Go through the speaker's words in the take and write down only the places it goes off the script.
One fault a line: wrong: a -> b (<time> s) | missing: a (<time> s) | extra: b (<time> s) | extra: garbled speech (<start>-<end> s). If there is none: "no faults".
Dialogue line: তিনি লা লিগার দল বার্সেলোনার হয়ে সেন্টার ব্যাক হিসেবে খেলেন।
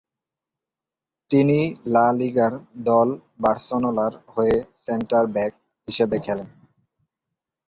no faults